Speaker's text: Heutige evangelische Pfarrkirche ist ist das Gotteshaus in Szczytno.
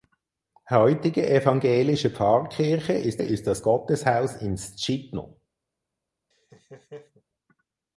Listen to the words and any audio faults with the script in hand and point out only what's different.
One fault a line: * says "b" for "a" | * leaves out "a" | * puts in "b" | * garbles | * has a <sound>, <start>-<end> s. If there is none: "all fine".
* has a laugh, 6.3-7.2 s